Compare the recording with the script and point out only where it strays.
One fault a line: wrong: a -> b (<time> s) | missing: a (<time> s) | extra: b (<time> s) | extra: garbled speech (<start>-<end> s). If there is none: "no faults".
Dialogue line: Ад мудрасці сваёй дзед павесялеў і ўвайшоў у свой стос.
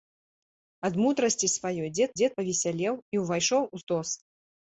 extra: дзед (2.2 s)
missing: свой (3.8 s)